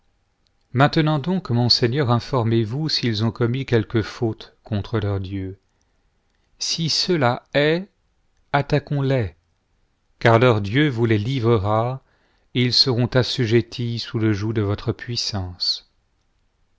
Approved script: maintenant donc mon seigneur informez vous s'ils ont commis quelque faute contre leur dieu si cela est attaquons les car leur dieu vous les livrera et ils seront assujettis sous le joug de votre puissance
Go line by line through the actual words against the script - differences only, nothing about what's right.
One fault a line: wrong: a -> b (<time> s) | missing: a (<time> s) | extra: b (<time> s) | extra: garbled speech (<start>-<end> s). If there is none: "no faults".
no faults